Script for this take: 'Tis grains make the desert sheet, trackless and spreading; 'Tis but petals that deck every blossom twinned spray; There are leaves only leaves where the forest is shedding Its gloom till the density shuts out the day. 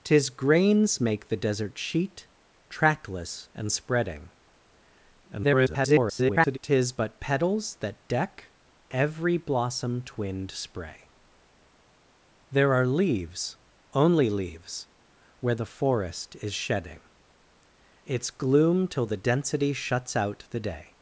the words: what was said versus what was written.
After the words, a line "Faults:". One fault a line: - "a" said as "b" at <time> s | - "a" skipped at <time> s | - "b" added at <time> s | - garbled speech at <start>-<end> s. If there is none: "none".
'Tis grains make the desert sheet, trackless and spreading; [garbled] 'Tis but petals that deck every blossom twinned spray; There are leaves only leaves where the forest is shedding Its gloom till the density shuts out the day.
Faults:
- garbled speech at 5.2-6.6 s